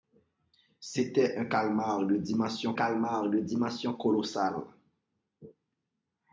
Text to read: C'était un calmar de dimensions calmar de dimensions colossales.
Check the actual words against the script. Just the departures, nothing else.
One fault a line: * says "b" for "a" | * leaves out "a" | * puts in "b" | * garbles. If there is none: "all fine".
all fine